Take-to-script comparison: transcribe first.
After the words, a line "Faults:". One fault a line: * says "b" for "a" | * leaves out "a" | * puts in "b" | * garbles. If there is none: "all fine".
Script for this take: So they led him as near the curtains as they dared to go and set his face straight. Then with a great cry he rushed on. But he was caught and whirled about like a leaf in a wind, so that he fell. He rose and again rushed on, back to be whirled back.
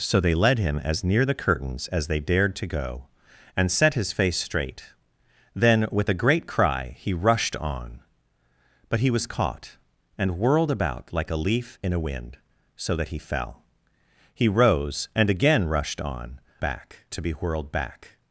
So they led him as near the curtains as they dared to go and set his face straight. Then with a great cry he rushed on. But he was caught and whirled about like a leaf in a wind, so that he fell. He rose and again rushed on, back to be whirled back.
Faults:
all fine